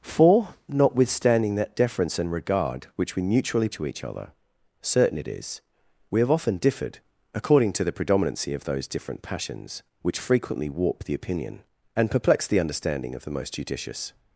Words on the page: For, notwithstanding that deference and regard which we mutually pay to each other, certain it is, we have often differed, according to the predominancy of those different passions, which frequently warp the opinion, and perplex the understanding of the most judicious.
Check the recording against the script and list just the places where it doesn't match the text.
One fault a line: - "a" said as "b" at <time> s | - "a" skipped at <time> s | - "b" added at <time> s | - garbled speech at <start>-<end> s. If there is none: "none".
- "pay" skipped at 3.7 s